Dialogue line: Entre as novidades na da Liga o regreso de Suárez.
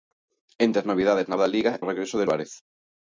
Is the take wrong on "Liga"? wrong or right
right